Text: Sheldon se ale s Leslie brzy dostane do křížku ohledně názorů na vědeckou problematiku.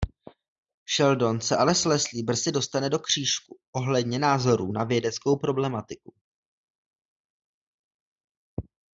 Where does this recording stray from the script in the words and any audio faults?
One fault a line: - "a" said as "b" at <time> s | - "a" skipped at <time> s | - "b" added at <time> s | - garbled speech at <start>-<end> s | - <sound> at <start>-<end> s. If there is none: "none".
none